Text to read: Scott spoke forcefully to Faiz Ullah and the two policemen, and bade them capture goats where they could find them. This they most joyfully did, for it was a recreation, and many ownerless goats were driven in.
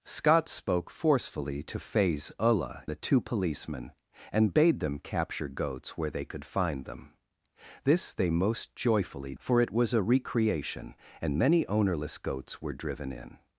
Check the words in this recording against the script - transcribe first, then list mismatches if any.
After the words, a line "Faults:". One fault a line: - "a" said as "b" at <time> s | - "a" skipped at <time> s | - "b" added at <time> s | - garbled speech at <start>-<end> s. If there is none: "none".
Scott spoke forcefully to Faiz Ullah the two policemen, and bade them capture goats where they could find them. This they most joyfully for it was a recreation, and many ownerless goats were driven in.
Faults:
- "and" skipped at 2.9 s
- "did" skipped at 9.3 s